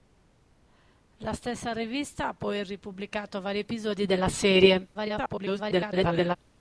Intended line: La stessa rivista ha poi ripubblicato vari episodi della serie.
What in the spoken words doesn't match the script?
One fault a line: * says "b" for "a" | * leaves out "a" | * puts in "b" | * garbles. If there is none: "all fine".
* garbles